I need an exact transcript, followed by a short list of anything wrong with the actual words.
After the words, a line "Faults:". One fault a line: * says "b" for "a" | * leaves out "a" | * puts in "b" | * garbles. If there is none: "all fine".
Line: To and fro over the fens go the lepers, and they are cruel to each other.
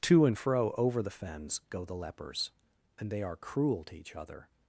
To and fro over the fens go the lepers, and they are cruel to each other.
Faults:
all fine